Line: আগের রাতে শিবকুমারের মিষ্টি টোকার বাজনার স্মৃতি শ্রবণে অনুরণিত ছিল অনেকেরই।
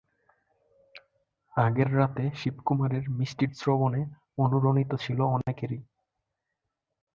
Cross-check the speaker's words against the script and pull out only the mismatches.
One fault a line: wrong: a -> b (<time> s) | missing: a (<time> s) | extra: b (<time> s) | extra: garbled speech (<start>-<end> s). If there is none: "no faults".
missing: টোকার বাজনার স্মৃতি (3.5 s)